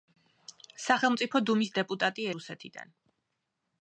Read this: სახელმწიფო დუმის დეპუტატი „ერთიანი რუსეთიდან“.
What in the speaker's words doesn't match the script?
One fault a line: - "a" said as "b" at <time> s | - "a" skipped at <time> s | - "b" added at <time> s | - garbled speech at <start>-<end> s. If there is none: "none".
- "ერთიანი" skipped at 2.3 s